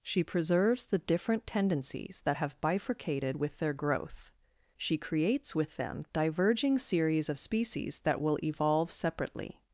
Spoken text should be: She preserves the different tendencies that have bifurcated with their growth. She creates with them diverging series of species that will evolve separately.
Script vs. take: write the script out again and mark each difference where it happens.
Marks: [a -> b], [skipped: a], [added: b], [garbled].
She preserves the different tendencies that have bifurcated with their growth. She creates with them diverging series of species that will evolve separately.